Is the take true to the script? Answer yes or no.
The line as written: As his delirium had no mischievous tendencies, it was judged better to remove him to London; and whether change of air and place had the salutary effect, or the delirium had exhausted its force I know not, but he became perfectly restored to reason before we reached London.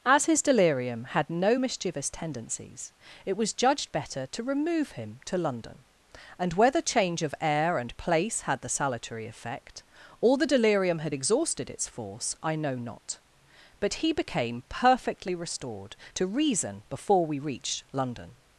yes